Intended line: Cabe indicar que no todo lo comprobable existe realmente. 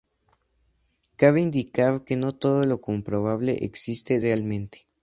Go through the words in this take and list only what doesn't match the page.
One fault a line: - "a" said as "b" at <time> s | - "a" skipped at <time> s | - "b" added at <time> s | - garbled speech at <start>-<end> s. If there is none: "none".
none